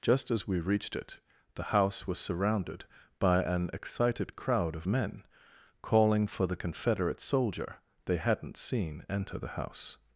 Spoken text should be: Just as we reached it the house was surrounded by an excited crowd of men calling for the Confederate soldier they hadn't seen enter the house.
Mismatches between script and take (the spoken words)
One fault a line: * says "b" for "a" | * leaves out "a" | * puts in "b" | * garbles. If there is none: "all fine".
all fine